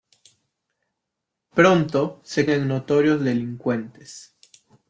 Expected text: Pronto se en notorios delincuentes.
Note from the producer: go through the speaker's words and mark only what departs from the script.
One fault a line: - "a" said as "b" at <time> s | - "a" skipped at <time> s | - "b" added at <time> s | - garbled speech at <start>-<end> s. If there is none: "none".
none